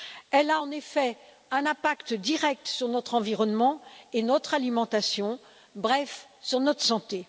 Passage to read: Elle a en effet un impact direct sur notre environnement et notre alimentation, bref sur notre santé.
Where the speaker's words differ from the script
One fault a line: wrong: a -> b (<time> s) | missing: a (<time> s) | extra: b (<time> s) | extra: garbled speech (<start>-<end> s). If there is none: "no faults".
no faults